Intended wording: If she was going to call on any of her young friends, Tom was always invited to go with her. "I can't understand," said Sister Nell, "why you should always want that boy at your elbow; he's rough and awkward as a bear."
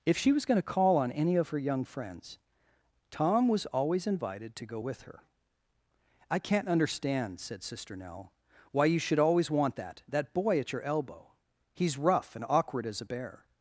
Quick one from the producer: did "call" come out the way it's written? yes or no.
yes